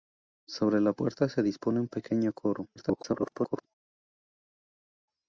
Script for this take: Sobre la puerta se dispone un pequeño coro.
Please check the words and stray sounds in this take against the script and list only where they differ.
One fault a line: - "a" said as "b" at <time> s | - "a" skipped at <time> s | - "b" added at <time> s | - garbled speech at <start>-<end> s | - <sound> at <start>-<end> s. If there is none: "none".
- garbled speech at 2.8-3.7 s